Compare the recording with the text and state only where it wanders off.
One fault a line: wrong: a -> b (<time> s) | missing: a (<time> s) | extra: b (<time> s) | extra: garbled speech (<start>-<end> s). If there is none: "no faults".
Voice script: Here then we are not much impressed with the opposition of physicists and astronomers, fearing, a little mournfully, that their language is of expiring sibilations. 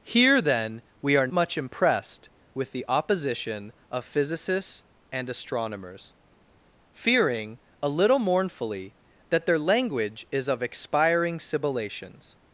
missing: not (1.3 s)